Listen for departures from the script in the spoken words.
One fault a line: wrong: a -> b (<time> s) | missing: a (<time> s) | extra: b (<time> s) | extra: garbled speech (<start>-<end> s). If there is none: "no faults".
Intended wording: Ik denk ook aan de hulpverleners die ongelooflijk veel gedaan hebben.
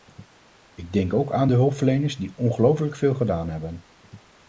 no faults